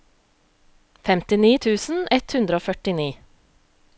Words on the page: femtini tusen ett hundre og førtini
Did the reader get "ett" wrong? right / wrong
right